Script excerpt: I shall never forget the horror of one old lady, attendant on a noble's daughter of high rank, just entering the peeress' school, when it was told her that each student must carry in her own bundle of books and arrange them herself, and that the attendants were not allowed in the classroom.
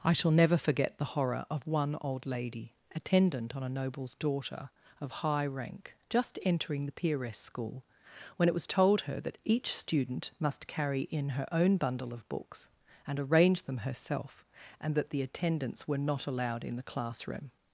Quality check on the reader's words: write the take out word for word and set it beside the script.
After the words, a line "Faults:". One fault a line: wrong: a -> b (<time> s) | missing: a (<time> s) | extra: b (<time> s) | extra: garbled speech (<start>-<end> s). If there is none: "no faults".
I shall never forget the horror of one old lady, attendant on a noble's daughter of high rank, just entering the peeress' school, when it was told her that each student must carry in her own bundle of books and arrange them herself, and that the attendants were not allowed in the classroom.
Faults:
no faults